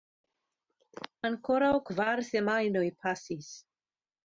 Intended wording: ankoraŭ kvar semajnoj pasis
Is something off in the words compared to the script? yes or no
no